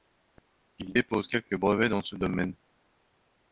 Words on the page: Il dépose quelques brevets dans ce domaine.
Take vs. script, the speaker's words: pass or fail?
pass